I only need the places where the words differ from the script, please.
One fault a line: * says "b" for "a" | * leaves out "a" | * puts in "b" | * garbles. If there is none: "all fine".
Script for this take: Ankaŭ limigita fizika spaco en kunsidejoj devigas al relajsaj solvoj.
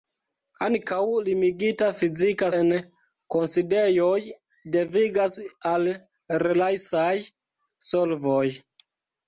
* leaves out "spaco"